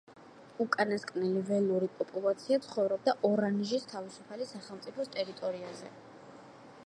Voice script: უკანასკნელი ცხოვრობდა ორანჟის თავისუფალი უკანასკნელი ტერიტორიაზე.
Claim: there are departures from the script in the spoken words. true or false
true